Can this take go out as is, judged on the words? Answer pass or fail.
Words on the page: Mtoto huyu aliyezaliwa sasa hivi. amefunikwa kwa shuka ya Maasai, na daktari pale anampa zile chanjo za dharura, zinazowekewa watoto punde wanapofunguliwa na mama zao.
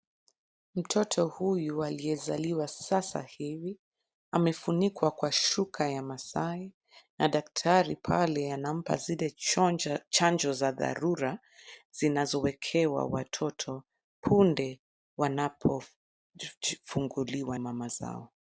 fail